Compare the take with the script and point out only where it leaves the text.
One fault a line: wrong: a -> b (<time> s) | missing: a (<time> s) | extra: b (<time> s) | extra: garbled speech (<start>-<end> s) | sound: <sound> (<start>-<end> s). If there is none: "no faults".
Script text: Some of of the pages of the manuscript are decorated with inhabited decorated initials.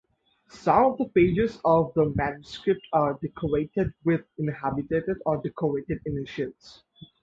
missing: of (1.0 s)
extra: or (5.3 s)